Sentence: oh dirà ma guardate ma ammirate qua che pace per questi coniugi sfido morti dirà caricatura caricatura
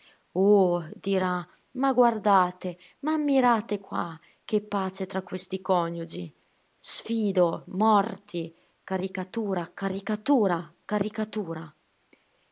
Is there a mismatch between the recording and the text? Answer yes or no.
yes